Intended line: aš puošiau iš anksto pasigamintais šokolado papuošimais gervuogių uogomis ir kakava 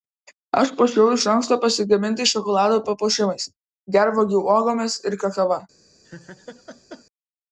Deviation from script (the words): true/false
false